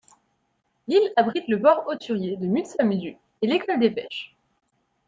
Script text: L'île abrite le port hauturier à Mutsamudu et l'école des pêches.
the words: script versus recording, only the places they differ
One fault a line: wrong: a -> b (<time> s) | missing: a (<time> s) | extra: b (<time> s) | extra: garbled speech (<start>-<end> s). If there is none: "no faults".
wrong: à -> de (2.4 s)